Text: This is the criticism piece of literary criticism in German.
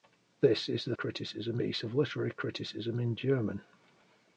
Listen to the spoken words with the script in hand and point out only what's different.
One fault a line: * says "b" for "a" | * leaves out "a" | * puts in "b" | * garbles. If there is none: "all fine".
all fine